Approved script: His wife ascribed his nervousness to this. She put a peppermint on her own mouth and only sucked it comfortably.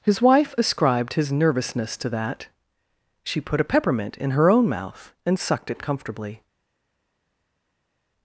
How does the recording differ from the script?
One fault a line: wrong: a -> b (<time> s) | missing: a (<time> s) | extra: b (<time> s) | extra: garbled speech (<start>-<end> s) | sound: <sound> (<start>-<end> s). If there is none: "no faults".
wrong: this -> that (2.1 s)
wrong: on -> in (4.2 s)
missing: only (5.4 s)